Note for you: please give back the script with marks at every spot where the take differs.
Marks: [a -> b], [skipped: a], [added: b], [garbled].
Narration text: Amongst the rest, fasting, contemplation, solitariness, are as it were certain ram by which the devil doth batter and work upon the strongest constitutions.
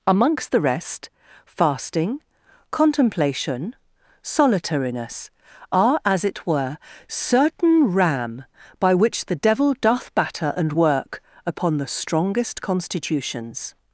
Amongst the rest, fasting, contemplation, solitariness, are as it were certain ram by which the devil doth batter and work upon the strongest constitutions.